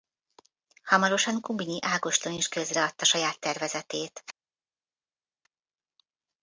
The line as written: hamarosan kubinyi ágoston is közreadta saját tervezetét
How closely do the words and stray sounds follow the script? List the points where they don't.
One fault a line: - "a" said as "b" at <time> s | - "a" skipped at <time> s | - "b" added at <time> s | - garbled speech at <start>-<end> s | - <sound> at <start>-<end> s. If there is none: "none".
none